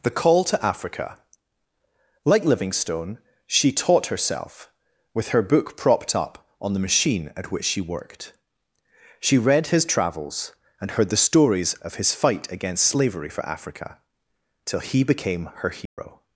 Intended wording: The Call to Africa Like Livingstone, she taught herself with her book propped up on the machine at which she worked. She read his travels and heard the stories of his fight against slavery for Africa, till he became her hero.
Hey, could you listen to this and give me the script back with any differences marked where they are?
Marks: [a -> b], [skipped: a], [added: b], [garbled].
The Call to Africa Like Livingstone, she taught herself with her book propped up on the machine at which she worked. She read his travels and heard the stories of his fight against slavery for Africa, till he became her hero.